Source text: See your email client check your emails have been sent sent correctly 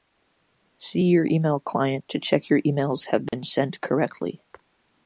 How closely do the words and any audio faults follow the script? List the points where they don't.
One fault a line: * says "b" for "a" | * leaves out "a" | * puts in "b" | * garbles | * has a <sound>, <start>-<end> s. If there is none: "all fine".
* puts in "to"
* has a dropout, 3.3-3.3 s
* leaves out "sent"